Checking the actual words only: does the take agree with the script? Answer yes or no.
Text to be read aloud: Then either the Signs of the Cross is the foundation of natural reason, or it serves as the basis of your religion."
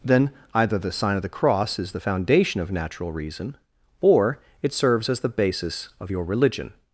no